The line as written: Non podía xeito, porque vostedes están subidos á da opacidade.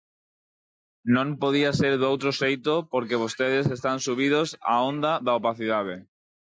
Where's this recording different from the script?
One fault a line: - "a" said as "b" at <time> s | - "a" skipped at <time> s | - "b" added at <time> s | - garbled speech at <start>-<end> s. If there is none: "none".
- "ser doutro" added at 1.8 s
- "onda" added at 4.9 s